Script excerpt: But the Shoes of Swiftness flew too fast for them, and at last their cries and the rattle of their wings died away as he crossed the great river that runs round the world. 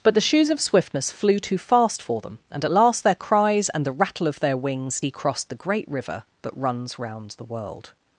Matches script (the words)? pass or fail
fail